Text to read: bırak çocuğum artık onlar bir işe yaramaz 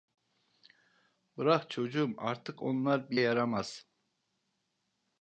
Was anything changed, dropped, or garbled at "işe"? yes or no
yes